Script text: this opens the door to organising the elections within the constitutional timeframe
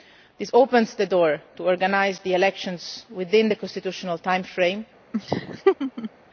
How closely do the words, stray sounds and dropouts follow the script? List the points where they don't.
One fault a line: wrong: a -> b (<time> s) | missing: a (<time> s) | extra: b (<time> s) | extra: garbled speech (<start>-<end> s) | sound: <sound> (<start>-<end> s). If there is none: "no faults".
sound: laugh (5.1-6.1 s)